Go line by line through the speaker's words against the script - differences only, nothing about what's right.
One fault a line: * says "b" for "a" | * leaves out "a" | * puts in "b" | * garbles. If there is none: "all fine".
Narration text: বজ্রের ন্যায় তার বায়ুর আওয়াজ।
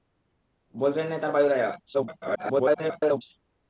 * garbles